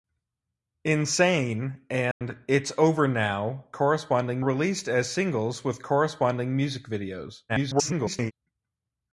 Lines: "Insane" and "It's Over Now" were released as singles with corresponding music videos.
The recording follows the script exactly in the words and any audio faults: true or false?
false